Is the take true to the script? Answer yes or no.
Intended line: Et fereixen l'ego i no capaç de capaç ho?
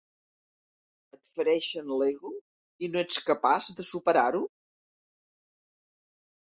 no